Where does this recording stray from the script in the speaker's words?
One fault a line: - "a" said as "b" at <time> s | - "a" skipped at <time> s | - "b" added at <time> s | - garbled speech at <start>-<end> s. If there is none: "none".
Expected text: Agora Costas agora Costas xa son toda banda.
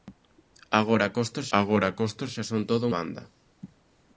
none